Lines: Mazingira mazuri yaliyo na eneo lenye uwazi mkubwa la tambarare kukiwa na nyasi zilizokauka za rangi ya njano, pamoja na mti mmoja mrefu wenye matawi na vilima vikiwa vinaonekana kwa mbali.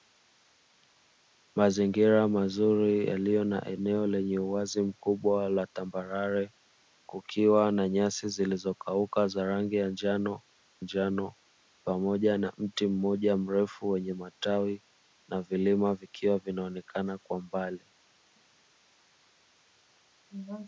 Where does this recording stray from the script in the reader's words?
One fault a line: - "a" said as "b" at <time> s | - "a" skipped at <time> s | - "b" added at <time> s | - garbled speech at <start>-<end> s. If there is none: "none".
- "njano" added at 10.8 s